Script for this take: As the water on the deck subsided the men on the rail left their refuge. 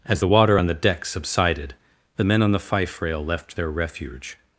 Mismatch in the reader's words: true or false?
true